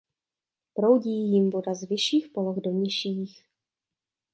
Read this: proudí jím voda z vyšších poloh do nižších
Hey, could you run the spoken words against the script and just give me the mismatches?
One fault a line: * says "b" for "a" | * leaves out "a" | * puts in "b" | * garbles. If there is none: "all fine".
all fine